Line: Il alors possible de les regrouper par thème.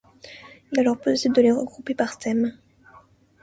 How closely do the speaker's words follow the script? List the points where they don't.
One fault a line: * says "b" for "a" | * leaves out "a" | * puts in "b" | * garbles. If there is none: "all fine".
all fine